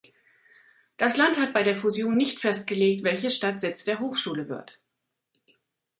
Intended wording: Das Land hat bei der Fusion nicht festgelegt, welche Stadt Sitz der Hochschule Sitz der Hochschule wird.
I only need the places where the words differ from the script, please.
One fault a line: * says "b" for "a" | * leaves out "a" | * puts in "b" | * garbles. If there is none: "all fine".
* leaves out "Sitz der Hochschule"